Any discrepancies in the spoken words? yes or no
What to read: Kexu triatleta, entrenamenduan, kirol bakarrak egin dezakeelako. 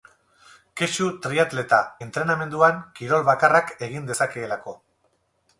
no